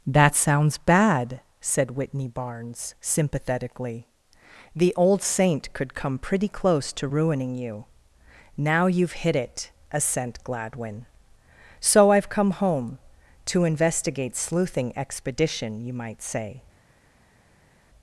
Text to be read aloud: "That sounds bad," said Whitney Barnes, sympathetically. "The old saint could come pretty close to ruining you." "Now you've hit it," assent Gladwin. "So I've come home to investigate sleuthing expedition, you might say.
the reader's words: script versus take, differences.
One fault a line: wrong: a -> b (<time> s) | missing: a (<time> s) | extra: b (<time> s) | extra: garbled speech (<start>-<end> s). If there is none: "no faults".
no faults